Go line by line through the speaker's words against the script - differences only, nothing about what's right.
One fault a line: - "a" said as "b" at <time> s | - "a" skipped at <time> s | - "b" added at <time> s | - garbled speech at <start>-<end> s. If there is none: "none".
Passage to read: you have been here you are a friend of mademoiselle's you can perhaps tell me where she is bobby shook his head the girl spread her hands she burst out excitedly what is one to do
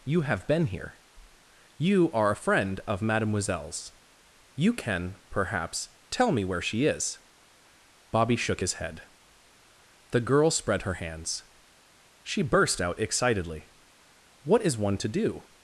none